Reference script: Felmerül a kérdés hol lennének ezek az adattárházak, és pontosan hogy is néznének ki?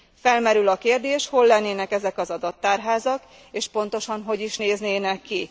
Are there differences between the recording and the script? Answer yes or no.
no